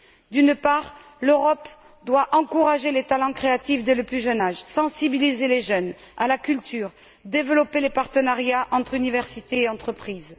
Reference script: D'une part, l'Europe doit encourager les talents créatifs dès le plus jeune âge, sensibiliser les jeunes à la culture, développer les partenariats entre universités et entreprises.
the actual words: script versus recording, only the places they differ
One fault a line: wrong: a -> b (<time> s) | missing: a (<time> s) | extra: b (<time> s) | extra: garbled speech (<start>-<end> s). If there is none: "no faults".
no faults